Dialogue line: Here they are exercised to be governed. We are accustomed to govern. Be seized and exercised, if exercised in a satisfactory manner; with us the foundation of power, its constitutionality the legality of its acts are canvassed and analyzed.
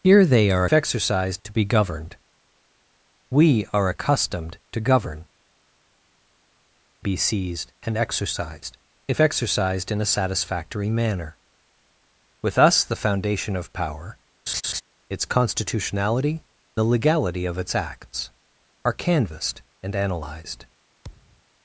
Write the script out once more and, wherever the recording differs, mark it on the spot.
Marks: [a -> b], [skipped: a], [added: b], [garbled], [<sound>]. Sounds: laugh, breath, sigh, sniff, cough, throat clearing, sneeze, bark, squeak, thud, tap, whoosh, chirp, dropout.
Here they are exercised to be governed. We are accustomed to govern. Be seized and exercised, if exercised in a satisfactory manner; with us the foundation of power, [laugh] its constitutionality the legality of its acts are canvassed and analyzed. [thud]